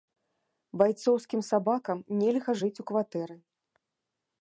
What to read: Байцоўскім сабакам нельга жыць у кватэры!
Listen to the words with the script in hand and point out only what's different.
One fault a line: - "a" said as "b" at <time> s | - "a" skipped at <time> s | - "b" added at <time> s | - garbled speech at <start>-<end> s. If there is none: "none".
none